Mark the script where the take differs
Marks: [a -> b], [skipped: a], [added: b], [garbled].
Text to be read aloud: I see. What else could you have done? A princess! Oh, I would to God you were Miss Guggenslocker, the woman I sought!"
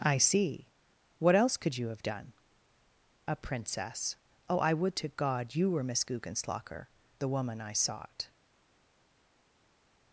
I see. What else could you have done? A princess! Oh, I would to God you were Miss Guggenslocker, the woman I sought!"